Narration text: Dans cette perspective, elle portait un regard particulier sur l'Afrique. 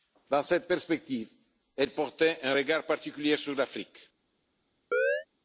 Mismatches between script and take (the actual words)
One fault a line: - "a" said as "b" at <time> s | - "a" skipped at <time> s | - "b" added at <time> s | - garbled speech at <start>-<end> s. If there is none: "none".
none